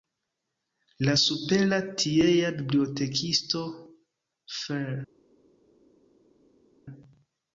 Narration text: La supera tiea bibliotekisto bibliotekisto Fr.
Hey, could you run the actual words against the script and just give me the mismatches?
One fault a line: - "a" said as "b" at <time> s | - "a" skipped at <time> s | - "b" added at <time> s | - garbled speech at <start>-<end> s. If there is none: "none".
- "bibliotekisto" skipped at 3.6 s